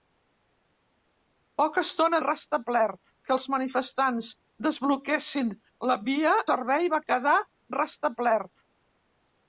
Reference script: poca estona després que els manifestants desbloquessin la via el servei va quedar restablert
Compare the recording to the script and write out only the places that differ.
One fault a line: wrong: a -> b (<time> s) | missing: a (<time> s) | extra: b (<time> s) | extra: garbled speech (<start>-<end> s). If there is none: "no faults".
wrong: després -> restablert (2.3 s)
missing: el (6.3 s)